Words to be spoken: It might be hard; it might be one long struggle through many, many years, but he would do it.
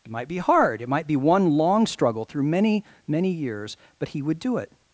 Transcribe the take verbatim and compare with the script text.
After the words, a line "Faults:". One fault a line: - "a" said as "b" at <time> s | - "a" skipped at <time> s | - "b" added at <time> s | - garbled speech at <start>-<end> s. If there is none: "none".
It might be hard; it might be one long struggle through many, many years, but he would do it.
Faults:
none